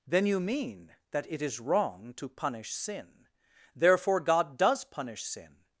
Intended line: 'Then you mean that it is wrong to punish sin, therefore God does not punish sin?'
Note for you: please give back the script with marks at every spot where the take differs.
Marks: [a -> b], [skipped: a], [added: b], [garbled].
'Then you mean that it is wrong to punish sin, therefore God does [skipped: not] punish sin?'